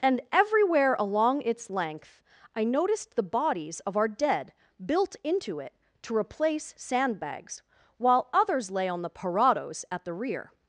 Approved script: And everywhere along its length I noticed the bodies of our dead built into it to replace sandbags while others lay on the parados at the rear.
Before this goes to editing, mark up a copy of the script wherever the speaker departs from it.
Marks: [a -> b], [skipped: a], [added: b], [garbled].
And everywhere along its length I noticed the bodies of our dead built into it to replace sandbags while others lay on the parados at the rear.